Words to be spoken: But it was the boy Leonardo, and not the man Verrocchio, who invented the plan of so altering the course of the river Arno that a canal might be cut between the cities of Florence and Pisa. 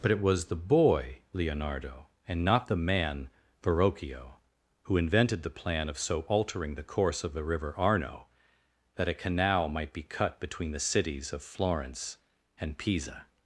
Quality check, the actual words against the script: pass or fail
pass